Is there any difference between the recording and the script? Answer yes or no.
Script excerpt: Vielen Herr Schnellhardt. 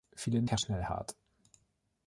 no